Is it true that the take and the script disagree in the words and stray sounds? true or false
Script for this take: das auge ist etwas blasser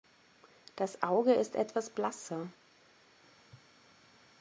false